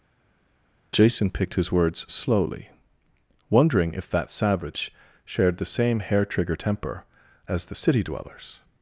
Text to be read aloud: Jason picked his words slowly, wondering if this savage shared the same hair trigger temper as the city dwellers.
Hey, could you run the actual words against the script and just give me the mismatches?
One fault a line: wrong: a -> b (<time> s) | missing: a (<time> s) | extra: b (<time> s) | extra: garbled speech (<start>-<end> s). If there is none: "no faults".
wrong: this -> that (4.1 s)